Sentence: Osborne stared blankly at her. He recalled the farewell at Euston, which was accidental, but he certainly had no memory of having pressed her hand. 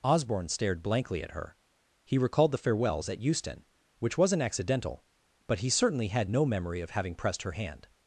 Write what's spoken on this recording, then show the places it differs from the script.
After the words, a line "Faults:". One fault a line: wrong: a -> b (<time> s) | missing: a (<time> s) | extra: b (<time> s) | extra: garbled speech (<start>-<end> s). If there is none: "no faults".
Osborne stared blankly at her. He recalled the farewells at Euston, which wasn't accidental, but he certainly had no memory of having pressed her hand.
Faults:
wrong: farewell -> farewells (2.6 s)
wrong: was -> wasn't (4.2 s)